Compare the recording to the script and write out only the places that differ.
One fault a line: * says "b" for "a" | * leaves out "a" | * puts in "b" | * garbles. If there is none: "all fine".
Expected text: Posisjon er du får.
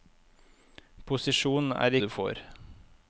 all fine